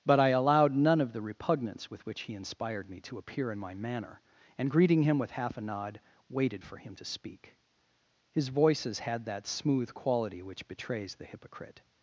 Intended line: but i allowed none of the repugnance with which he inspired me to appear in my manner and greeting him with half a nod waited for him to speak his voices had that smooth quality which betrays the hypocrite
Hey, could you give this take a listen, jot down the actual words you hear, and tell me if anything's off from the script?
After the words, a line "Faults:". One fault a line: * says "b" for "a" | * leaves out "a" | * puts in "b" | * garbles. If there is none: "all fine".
but i allowed none of the repugnance with which he inspired me to appear in my manner and greeting him with half a nod waited for him to speak his voices had that smooth quality which betrays the hypocrite
Faults:
all fine